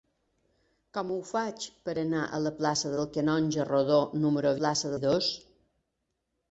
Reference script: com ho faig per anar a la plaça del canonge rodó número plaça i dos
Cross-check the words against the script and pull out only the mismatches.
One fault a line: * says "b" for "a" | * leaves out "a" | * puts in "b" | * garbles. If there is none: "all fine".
all fine